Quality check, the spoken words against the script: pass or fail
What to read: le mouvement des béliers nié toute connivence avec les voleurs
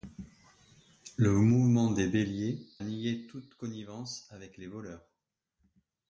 pass